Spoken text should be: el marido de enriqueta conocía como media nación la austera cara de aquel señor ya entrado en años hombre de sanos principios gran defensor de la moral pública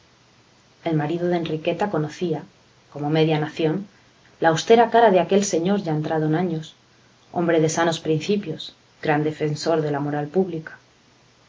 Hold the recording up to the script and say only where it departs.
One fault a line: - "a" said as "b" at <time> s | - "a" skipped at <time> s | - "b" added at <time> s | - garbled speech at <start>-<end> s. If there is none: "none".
none